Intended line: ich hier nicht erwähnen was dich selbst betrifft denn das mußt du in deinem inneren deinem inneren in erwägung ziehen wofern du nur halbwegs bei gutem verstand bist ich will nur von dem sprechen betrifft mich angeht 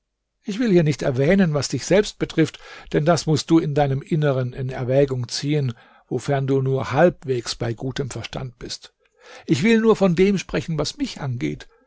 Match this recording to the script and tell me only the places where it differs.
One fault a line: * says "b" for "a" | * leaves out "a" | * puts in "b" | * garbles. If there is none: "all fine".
* puts in "will"
* leaves out "deinem inneren"
* says "was" for "betrifft"